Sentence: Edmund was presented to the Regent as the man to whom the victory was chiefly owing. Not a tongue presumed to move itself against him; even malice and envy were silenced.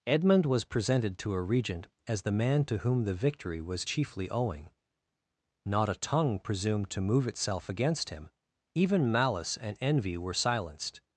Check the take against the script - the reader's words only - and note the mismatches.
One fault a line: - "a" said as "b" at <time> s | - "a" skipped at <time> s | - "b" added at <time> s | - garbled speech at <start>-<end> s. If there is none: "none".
- "the" said as "a" at 1.3 s